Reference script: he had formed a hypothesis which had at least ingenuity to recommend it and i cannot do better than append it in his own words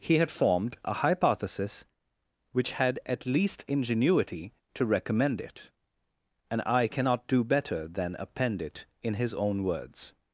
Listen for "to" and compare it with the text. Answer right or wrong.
right